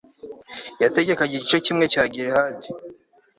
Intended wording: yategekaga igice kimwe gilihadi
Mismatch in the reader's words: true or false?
true